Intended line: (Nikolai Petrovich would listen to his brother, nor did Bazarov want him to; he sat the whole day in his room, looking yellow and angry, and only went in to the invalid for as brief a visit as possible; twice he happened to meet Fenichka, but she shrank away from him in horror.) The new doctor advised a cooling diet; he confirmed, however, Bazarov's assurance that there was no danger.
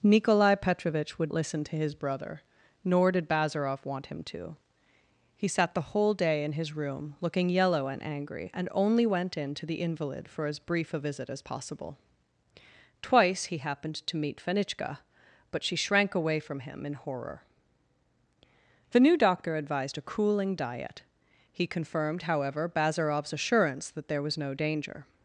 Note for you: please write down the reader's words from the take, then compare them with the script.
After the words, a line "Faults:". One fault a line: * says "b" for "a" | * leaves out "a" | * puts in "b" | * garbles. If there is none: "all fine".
(Nikolai Petrovich would listen to his brother, nor did Bazarov want him to; he sat the whole day in his room, looking yellow and angry, and only went in to the invalid for as brief a visit as possible; twice he happened to meet Fenichka, but she shrank away from him in horror.) The new doctor advised a cooling diet; he confirmed, however, Bazarov's assurance that there was no danger.
Faults:
all fine